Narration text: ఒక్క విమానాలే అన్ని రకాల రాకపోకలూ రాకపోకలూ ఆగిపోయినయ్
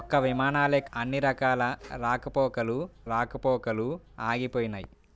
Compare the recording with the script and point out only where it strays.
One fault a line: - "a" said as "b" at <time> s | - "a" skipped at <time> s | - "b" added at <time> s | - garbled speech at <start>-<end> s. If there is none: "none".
none